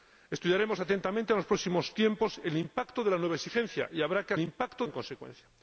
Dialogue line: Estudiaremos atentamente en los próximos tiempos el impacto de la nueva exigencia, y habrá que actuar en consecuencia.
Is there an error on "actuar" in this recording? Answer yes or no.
yes